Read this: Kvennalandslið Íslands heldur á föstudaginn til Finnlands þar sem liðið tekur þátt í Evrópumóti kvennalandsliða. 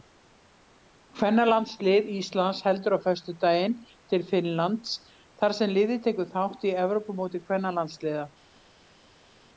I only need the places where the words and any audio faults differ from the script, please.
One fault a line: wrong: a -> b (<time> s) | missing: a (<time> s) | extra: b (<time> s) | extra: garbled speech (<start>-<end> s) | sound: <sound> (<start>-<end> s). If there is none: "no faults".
no faults